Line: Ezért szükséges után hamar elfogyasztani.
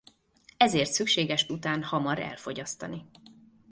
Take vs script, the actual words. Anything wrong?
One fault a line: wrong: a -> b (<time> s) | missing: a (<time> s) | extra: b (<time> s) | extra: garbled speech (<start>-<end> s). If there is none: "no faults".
no faults